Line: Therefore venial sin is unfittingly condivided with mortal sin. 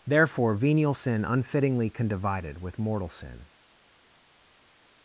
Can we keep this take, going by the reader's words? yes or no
no